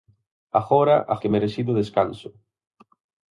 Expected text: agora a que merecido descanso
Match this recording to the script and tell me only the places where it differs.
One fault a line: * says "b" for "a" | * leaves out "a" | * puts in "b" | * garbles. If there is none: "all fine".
all fine